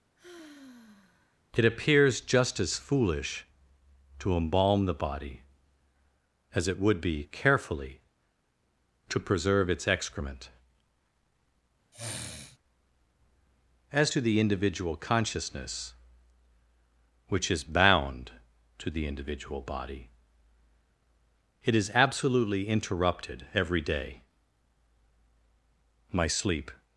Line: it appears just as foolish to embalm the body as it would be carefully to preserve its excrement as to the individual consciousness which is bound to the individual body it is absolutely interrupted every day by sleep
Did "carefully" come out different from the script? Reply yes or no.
no